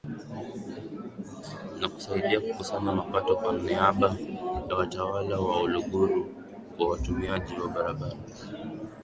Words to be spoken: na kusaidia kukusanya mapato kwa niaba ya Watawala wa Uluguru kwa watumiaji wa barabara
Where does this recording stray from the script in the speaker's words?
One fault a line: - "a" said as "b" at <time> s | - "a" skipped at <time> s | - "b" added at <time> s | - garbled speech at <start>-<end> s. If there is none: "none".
none